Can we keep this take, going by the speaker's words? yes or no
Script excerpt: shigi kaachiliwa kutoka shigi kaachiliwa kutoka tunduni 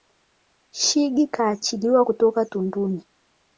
no